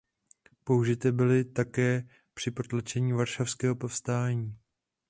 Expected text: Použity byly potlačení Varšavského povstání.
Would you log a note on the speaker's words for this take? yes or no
yes